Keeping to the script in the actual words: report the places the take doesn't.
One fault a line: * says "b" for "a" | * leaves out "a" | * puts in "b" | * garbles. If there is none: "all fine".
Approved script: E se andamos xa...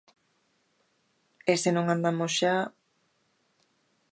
* puts in "non"